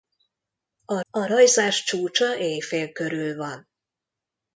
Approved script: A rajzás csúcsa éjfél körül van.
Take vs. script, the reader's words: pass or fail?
fail